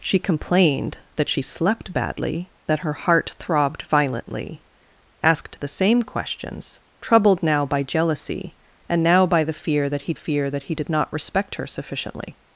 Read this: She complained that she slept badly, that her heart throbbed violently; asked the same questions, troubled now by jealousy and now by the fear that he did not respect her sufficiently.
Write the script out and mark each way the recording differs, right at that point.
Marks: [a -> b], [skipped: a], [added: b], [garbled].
She complained that she slept badly, that her heart throbbed violently; asked the same questions, troubled now by jealousy and now by the fear that he [added: fear that he] did not respect her sufficiently.